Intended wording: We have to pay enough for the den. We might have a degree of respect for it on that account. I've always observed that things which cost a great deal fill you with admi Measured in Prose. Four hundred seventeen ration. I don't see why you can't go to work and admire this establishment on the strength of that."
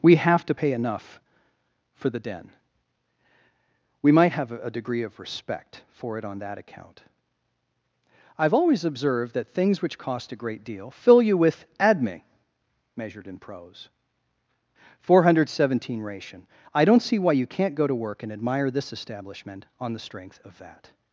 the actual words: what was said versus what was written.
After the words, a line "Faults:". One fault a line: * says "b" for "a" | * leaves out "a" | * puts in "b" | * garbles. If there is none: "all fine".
We have to pay enough for the den. We might have a degree of respect for it on that account. I've always observed that things which cost a great deal fill you with admi Measured in Prose. Four hundred seventeen ration. I don't see why you can't go to work and admire this establishment on the strength of that."
Faults:
all fine